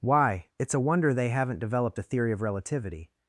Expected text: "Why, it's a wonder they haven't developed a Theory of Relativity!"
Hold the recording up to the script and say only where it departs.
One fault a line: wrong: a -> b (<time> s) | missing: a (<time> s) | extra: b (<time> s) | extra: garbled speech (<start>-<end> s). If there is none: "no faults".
no faults